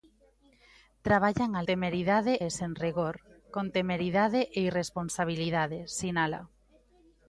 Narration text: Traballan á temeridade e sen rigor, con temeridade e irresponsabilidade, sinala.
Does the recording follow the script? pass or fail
pass